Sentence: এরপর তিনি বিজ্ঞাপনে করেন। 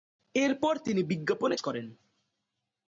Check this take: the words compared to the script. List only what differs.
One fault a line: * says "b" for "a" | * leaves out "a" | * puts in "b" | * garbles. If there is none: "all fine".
all fine